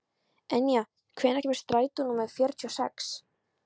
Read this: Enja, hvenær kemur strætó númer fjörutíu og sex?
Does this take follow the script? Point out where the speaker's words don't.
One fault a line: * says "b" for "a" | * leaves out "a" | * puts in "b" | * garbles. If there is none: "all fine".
all fine